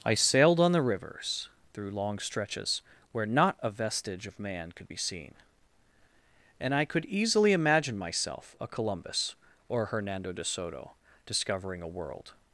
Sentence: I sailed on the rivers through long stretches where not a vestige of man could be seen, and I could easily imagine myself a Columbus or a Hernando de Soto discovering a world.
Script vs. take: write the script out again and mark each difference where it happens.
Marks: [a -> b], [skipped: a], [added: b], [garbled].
I sailed on the rivers through long stretches where not a vestige of man could be seen, and I could easily imagine myself a Columbus or [skipped: a] Hernando de Soto discovering a world.